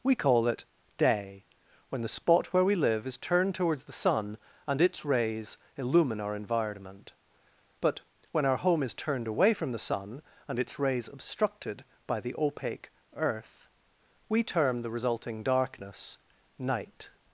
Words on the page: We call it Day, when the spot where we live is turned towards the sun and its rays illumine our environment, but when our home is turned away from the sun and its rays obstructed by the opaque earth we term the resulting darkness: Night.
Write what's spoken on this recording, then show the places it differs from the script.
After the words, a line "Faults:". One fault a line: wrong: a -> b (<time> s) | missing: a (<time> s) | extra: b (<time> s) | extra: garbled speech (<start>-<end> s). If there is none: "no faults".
We call it Day, when the spot where we live is turned towards the sun and its rays illumine our environment, but when our home is turned away from the sun and its rays obstructed by the opaque earth we term the resulting darkness: Night.
Faults:
no faults